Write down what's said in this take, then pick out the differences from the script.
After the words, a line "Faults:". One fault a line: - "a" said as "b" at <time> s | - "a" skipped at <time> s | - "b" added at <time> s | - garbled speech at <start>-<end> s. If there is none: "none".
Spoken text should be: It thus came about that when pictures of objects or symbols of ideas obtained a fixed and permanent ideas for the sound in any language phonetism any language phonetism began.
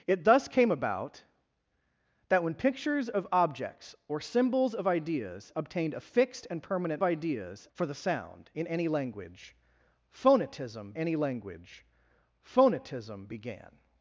It thus came about that when pictures of objects or symbols of ideas obtained a fixed and permanent ideas for the sound in any language phonetism any language phonetism began.
Faults:
none